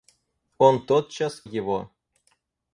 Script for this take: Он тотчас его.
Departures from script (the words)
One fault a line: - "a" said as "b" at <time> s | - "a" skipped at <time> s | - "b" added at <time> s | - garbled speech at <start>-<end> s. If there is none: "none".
none